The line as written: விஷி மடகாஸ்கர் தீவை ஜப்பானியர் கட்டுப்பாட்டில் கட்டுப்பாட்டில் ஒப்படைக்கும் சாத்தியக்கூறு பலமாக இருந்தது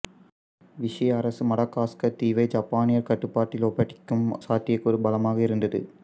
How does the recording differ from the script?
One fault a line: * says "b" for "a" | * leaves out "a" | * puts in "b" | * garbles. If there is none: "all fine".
* puts in "அரசு"
* leaves out "கட்டுப்பாட்டில்"